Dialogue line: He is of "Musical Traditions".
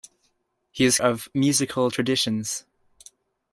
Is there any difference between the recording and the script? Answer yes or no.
no